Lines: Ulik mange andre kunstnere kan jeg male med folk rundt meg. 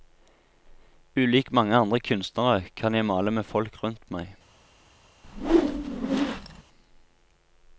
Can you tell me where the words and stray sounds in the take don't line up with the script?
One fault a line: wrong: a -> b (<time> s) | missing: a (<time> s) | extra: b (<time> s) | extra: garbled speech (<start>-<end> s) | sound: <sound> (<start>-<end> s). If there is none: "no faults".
sound: whoosh (5.2-6.6 s)